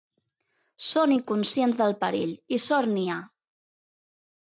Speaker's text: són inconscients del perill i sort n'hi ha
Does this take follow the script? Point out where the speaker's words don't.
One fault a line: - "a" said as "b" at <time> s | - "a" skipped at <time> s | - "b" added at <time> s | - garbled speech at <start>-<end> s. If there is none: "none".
none